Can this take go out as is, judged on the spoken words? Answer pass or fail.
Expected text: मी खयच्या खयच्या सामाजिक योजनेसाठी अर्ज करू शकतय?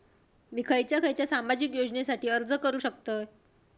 pass